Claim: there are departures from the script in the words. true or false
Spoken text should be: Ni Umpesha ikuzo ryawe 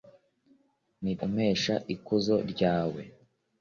false